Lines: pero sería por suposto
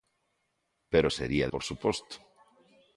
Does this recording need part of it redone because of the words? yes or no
no